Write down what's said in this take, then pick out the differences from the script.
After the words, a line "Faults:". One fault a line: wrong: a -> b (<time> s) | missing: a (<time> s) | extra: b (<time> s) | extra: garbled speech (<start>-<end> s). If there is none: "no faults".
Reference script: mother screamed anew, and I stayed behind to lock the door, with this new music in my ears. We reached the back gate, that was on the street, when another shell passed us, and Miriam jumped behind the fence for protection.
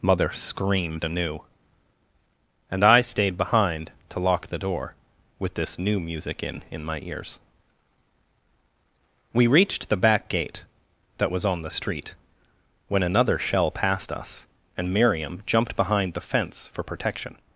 mother screamed anew, and I stayed behind to lock the door, with this new music in in my ears. We reached the back gate, that was on the street, when another shell passed us, and Miriam jumped behind the fence for protection.
Faults:
extra: in (6.7 s)